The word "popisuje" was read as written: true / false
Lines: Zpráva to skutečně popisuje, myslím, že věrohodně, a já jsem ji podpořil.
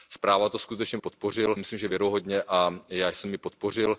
false